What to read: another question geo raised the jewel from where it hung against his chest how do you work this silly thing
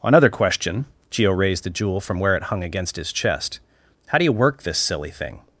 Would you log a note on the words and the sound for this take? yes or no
no